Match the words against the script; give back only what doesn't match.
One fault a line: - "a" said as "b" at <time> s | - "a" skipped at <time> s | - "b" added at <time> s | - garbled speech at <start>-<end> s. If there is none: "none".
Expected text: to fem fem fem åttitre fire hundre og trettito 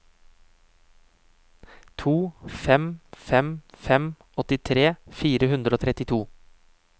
none